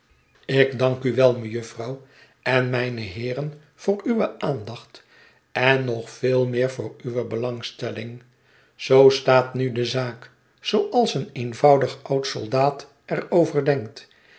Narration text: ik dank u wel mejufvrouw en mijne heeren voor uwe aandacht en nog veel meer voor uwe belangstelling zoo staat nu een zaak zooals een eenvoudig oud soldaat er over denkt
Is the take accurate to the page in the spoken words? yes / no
no